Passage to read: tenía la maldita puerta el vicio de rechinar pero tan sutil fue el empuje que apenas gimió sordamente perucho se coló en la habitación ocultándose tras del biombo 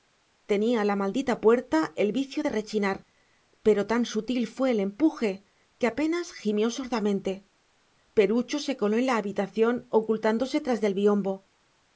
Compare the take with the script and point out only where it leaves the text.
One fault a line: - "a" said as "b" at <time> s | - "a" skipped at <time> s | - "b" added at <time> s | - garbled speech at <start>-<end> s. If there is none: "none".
none